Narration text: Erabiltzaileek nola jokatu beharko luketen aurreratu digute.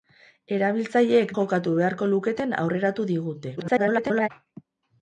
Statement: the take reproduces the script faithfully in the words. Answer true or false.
false